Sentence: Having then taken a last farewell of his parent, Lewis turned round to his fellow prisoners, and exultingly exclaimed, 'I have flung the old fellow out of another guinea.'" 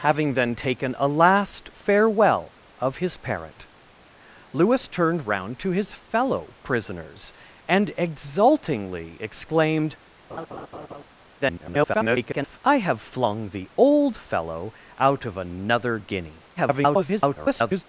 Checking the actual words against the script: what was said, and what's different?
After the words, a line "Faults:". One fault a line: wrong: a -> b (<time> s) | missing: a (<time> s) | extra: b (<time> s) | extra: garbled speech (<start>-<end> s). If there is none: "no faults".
Having then taken a last farewell of his parent, Lewis turned round to his fellow prisoners, and exultingly exclaimed, [garbled] 'I have flung the old fellow out of another guinea.'" [garbled]
Faults:
extra: garbled speech (11.4-12.6 s)
extra: garbled speech (16.6-17.8 s)